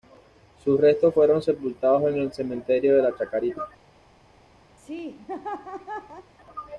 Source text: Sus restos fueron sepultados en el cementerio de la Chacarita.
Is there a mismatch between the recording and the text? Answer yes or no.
no